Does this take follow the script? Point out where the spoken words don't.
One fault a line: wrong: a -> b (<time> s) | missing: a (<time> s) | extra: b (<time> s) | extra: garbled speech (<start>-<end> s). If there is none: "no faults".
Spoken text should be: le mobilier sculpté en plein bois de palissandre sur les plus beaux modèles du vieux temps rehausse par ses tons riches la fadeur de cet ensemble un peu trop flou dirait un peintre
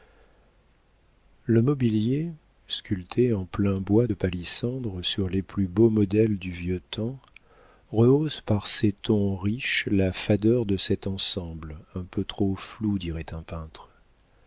no faults